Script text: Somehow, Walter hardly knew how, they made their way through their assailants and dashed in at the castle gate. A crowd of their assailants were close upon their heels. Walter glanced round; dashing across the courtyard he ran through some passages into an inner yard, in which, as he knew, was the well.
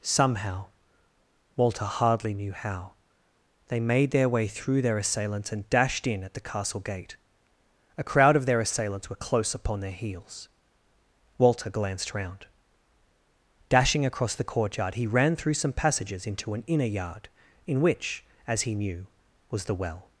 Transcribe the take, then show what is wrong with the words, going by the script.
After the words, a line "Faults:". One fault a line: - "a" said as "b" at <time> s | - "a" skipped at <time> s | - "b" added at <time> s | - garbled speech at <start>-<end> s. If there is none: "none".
Somehow, Walter hardly knew how, they made their way through their assailants and dashed in at the castle gate. A crowd of their assailants were close upon their heels. Walter glanced round; dashing across the courtyard he ran through some passages into an inner yard, in which, as he knew, was the well.
Faults:
none